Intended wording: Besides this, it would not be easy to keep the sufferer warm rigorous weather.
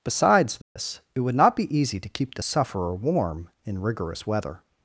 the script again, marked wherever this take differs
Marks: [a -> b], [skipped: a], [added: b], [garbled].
Besides this, it would not be easy to keep the sufferer warm [added: in] rigorous weather.